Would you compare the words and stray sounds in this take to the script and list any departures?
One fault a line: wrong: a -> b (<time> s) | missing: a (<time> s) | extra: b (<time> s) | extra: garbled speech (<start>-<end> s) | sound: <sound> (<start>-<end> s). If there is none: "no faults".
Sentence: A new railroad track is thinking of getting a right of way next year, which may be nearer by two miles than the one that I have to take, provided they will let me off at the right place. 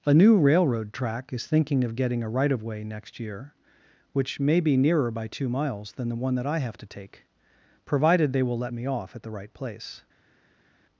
no faults